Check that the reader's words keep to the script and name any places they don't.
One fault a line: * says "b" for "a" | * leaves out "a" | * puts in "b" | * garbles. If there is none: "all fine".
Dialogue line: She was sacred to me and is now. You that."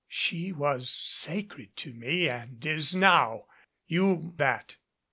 all fine